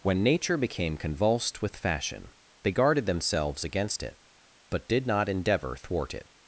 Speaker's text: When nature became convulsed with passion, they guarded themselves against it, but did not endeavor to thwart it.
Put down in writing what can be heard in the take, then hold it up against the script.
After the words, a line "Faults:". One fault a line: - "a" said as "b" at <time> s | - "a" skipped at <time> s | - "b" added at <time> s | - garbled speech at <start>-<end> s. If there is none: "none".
When nature became convulsed with fashion, they guarded themselves against it, but did not endeavor thwart it.
Faults:
- "passion" said as "fashion" at 1.8 s
- "to" skipped at 5.8 s